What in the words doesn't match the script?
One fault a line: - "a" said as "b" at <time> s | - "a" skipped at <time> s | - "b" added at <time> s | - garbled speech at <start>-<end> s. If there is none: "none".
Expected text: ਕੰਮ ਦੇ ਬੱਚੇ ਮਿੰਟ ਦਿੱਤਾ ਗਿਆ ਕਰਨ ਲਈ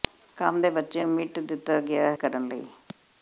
none